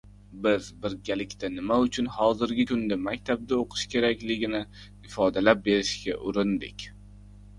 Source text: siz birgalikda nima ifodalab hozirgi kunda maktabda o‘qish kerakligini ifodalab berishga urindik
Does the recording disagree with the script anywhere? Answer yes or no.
yes